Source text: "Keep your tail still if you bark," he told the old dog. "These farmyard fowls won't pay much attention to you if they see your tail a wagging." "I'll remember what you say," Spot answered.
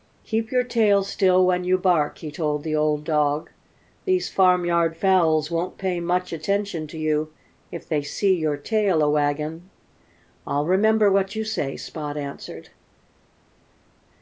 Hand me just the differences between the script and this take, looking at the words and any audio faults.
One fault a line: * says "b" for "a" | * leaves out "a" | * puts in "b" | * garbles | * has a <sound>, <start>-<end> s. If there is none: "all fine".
* says "when" for "if"